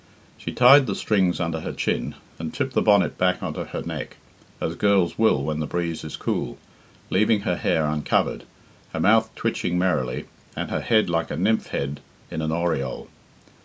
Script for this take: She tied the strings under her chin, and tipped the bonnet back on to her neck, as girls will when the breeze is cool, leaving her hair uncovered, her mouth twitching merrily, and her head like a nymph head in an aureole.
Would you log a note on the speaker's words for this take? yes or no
no